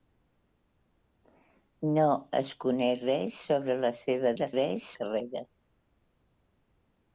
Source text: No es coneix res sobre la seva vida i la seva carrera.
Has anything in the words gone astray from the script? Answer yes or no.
yes